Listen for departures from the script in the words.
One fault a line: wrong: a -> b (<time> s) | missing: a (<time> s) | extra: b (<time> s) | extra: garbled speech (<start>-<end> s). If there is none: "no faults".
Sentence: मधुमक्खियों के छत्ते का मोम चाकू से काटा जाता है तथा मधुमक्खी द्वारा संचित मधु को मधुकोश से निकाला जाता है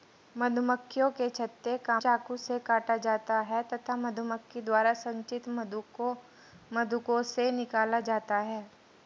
missing: मोम (2.0 s)